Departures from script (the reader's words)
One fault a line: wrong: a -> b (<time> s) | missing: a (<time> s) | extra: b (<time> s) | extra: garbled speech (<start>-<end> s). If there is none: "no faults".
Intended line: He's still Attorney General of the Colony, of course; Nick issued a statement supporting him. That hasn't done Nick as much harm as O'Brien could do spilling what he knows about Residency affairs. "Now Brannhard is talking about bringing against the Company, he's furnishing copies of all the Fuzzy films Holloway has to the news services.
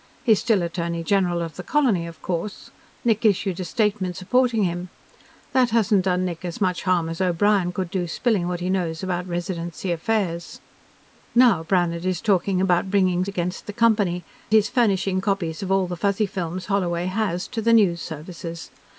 no faults